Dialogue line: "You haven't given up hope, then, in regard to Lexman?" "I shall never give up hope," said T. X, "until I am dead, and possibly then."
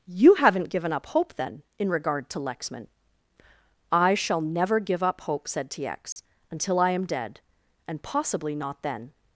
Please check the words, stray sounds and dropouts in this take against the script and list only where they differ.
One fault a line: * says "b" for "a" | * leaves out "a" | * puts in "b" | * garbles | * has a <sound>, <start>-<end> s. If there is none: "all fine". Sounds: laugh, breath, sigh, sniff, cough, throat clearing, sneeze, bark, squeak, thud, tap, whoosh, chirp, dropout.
* has a dropout, 6.1-6.2 s
* puts in "not"